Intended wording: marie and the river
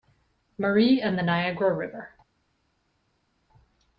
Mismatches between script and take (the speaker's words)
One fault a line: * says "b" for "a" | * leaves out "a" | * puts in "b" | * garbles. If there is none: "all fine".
* puts in "niagara"